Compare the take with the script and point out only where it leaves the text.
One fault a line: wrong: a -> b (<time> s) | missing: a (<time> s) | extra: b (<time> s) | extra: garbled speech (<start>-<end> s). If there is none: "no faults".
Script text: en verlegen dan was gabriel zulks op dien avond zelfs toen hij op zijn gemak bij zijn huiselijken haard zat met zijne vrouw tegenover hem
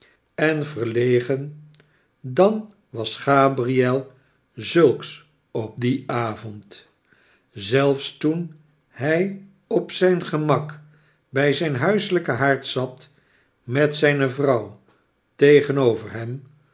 no faults